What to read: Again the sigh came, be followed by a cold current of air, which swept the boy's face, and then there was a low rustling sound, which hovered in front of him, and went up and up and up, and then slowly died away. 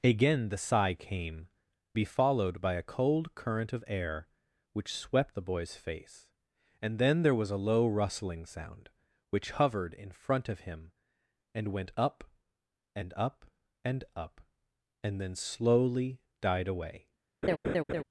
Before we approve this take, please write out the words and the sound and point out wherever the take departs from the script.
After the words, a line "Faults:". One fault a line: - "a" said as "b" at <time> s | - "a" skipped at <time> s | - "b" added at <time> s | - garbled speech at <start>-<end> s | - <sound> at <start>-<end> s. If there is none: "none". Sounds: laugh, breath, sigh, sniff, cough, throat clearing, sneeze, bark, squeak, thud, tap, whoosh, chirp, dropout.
Again the sigh came, be followed by a cold current of air, which swept the boy's face, and then there was a low rustling sound, which hovered in front of him, and went up and up and up, and then slowly died away.
Faults:
- laugh at 17.4-18.0 s